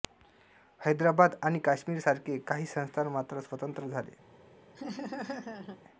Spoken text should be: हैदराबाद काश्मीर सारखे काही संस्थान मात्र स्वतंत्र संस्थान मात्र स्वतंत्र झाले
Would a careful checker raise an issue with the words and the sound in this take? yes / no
yes